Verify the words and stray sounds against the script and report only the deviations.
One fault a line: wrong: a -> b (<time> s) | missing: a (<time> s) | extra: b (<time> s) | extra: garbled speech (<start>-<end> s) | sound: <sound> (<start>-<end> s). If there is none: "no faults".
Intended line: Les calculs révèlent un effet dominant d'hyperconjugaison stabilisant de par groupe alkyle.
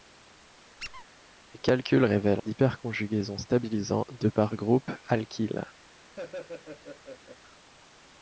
sound: squeak (0.8-1.0 s)
missing: un effet dominant (2.4 s)
sound: laugh (6.1-7.4 s)